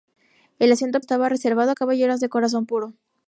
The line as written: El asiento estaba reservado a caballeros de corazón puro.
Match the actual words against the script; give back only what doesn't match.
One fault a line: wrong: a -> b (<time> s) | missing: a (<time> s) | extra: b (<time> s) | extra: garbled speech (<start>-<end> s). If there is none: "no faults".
no faults